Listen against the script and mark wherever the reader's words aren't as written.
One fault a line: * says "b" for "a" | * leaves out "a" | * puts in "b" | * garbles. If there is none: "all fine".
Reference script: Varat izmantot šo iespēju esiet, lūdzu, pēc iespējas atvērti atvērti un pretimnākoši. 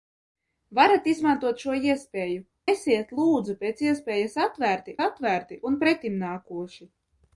all fine